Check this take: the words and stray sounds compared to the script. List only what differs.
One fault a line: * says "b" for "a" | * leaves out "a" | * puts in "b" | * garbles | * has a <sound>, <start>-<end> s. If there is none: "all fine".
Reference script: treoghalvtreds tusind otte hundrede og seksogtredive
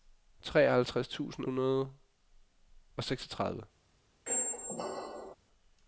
* leaves out "otte"
* has a squeak, 4.3-5.4 s